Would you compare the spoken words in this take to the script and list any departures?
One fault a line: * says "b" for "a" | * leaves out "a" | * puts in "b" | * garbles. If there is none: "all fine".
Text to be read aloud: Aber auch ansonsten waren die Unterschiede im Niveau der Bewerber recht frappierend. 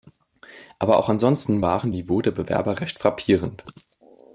* leaves out "die Unterschiede im"